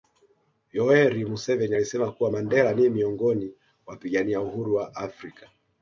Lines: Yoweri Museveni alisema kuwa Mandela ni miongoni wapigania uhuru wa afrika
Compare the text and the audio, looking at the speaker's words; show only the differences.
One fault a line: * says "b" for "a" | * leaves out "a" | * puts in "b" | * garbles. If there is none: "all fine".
all fine